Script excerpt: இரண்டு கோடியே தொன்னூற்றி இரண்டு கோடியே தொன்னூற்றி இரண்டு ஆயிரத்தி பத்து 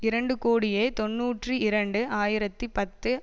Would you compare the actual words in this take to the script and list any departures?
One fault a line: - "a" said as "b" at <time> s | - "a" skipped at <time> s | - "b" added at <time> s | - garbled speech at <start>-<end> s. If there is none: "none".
- "கோடியே தொன்னூற்றி இரண்டு" skipped at 2.0 s